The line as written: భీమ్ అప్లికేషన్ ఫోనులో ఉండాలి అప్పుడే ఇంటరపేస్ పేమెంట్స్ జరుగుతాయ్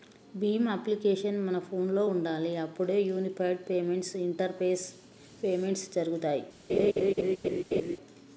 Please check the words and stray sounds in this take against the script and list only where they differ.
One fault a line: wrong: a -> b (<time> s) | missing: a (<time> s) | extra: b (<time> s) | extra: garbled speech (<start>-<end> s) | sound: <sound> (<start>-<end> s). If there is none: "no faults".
extra: మన (1.5 s)
extra: యూనిఫైడ్ పేమెంట్స్ (3.0 s)
sound: laugh (6.7-8.0 s)